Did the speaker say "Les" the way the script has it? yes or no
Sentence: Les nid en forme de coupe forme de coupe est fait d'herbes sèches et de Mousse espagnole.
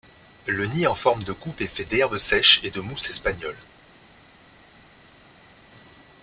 no